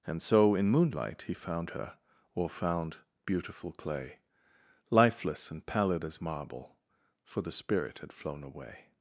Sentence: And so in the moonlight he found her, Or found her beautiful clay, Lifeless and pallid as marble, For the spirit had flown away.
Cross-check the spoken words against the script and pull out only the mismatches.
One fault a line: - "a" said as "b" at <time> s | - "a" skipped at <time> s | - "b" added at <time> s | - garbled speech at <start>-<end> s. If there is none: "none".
- "the" skipped at 0.7 s
- "her" skipped at 3.0 s